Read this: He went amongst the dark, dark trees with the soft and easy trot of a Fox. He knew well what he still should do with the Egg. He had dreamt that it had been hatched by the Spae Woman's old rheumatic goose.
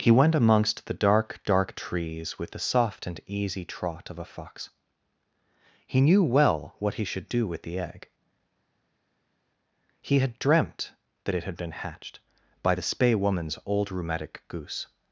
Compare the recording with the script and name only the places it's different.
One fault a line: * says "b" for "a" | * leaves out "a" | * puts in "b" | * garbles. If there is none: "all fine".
* leaves out "still"